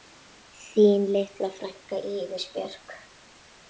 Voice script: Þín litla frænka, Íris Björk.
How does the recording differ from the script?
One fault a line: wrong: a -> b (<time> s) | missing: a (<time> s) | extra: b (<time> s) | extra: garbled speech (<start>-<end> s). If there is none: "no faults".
no faults